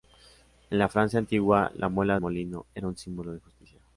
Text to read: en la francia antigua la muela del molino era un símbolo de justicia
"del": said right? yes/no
no